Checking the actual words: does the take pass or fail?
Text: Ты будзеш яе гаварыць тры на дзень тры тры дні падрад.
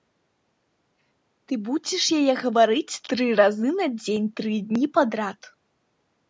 fail